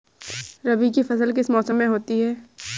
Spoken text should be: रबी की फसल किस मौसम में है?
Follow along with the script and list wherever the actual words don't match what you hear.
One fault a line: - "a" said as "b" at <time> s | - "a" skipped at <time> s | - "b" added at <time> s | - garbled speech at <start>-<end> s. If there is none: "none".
- "होती" added at 1.9 s